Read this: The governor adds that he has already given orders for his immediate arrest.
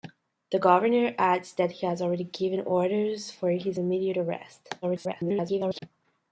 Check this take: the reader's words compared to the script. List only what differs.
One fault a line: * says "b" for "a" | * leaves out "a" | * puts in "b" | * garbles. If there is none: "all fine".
* garbles